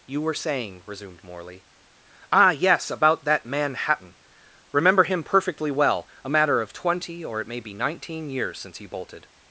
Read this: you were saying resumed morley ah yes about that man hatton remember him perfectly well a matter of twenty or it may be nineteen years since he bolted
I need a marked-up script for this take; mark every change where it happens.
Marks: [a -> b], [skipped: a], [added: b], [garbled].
you were saying resumed morley ah yes about that man hatton remember him perfectly well a matter of twenty or it may be nineteen years since he bolted